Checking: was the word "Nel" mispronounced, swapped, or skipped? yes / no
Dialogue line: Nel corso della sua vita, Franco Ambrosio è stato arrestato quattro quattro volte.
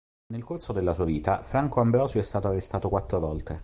no